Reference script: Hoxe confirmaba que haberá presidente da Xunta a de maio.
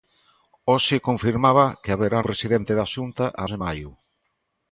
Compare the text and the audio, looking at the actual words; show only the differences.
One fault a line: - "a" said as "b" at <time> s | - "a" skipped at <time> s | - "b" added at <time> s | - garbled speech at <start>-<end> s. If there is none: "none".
none